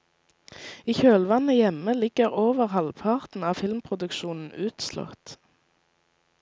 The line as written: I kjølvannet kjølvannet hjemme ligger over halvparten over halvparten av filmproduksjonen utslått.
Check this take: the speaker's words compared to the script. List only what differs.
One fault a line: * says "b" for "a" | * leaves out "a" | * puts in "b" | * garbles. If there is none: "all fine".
* leaves out "kjølvannet"
* leaves out "over halvparten"